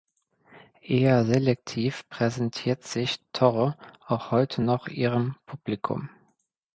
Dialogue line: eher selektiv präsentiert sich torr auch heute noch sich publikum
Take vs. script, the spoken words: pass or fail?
fail